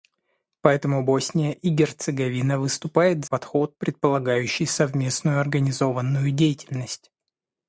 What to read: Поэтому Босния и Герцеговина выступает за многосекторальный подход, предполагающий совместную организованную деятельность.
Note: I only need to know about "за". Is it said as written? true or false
false